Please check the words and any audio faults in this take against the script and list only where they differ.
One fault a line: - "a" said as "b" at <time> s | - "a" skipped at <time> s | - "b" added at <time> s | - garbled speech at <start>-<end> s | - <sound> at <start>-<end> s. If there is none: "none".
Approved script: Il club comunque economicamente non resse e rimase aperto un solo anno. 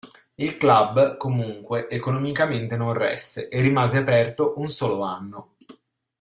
none